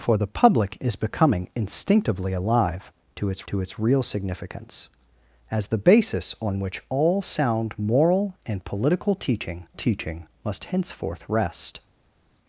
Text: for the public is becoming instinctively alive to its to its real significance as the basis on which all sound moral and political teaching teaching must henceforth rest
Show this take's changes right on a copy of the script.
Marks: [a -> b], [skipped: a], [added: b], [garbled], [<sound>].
for the public is becoming instinctively alive to its to its real significance as the basis on which all sound moral and political teaching teaching must henceforth rest